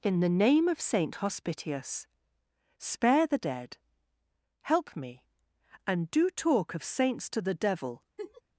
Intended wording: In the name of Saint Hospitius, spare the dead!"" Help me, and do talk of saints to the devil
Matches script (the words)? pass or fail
pass